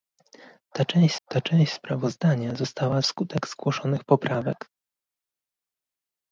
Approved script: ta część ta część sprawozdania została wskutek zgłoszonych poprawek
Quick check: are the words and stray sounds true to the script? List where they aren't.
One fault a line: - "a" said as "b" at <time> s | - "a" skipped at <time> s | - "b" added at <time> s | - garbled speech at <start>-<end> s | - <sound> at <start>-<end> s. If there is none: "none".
none